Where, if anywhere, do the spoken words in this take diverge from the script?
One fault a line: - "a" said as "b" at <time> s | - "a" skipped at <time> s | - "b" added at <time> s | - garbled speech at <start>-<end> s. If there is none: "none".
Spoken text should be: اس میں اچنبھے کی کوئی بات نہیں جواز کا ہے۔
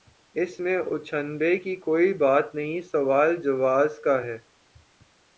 - "سوال" added at 2.8 s